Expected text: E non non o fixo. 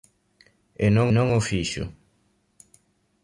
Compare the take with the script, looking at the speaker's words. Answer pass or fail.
pass